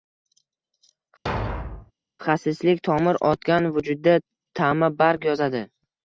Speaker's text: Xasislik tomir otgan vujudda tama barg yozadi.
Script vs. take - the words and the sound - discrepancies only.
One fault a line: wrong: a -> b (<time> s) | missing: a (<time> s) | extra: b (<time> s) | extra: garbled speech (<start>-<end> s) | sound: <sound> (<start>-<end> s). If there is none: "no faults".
sound: thud (1.3-1.9 s)